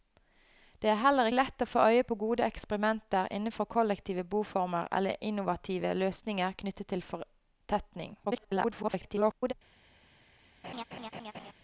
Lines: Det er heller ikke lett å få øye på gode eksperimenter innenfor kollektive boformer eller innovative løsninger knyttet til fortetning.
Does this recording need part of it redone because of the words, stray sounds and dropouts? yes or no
yes